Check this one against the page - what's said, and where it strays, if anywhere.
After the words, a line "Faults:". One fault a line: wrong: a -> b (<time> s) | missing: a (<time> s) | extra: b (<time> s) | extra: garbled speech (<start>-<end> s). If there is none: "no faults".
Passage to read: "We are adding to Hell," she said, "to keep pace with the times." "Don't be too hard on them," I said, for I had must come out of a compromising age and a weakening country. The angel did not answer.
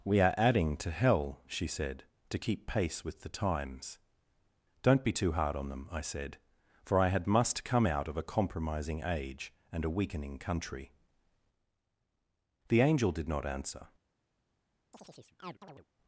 "We are adding to Hell," she said, "to keep pace with the times." "Don't be too hard on them," I said, for I had must come out of a compromising age and a weakening country. The angel did not answer.
Faults:
no faults